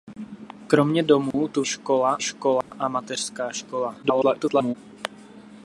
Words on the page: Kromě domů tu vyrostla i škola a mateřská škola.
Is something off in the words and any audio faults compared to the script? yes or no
yes